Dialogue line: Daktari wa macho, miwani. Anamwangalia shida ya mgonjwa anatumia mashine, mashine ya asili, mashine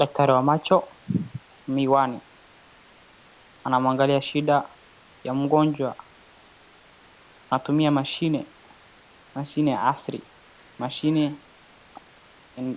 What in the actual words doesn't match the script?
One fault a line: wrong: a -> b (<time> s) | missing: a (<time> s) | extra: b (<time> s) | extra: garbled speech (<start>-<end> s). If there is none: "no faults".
no faults